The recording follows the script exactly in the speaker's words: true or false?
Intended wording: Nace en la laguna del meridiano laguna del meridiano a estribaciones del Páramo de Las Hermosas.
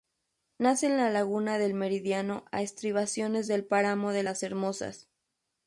false